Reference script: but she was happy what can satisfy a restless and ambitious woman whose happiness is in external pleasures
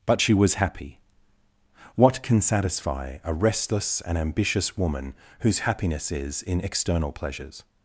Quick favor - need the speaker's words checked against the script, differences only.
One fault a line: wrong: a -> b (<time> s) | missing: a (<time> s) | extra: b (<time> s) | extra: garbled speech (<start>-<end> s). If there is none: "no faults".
no faults